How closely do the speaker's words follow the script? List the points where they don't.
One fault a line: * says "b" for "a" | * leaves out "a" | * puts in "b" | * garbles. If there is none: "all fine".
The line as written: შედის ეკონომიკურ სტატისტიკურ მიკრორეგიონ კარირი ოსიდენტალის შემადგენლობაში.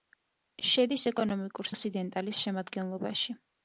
* leaves out "სტატისტიკურ მიკრორეგიონ კარირი"